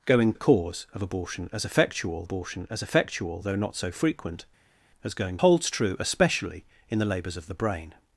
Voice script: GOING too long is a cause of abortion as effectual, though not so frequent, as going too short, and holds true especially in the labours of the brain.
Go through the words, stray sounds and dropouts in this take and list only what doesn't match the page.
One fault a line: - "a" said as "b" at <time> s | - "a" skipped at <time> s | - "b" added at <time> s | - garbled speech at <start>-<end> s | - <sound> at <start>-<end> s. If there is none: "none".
- "too long is" skipped at 0.3 s
- "abortion as effectual" added at 2.2 s
- "too short and" skipped at 5.4 s